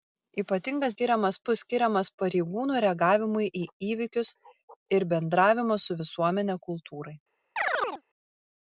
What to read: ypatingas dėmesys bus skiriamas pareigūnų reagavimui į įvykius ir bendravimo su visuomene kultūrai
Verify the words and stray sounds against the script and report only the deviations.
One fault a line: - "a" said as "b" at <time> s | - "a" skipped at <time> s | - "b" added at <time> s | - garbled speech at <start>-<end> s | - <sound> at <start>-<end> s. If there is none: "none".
- "dėmesys" said as "skiriamas" at 0.9 s
- chirp at 7.6-8.0 s